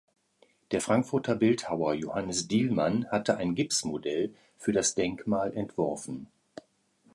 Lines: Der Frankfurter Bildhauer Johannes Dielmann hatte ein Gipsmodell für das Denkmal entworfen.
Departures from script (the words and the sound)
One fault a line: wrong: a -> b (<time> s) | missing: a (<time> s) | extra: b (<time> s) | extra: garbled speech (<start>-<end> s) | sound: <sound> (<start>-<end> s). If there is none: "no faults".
no faults